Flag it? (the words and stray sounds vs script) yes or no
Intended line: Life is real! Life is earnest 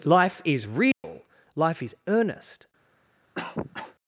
yes